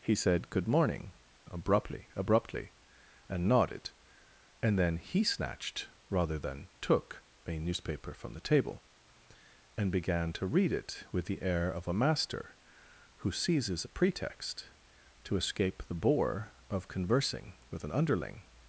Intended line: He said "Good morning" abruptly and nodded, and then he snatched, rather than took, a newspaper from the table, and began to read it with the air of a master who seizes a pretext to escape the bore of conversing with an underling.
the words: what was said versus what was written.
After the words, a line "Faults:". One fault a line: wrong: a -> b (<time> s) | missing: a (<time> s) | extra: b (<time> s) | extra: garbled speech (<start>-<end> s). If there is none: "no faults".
He said "Good morning" abruptly abruptly and nodded, and then he snatched, rather than took, a newspaper from the table, and began to read it with the air of a master who seizes a pretext to escape the bore of conversing with an underling.
Faults:
extra: abruptly (2.1 s)